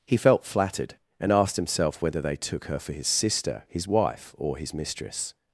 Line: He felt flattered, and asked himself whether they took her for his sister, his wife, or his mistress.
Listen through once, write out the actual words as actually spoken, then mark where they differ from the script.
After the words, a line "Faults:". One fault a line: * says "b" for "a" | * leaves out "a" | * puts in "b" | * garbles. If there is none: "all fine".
He felt flattered, and asked himself whether they took her for his sister, his wife, or his mistress.
Faults:
all fine